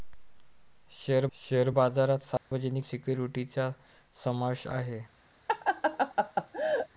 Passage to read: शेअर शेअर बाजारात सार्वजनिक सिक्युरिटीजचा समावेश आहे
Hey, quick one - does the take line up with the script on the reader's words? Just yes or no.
yes